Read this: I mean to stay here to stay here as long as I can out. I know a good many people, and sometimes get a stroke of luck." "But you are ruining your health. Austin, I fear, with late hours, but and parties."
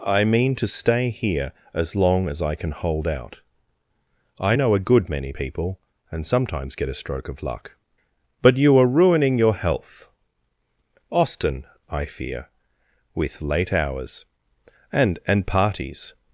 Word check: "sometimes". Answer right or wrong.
right